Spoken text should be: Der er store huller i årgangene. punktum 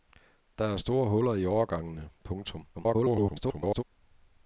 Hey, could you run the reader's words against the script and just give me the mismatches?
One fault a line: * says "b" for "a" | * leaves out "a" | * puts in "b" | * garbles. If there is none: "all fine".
* garbles